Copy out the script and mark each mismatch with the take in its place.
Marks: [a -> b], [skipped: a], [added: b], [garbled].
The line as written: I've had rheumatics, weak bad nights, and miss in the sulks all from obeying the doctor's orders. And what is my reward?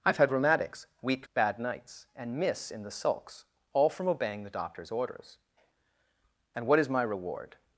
I've had rheumatics, weak bad nights, and miss in the sulks all from obeying the doctor's orders. And what is my reward?